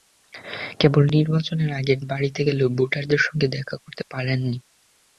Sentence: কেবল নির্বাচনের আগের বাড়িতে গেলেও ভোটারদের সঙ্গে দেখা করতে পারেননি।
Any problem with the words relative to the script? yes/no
no